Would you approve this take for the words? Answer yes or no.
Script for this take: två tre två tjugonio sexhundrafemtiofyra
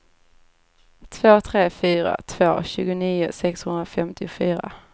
no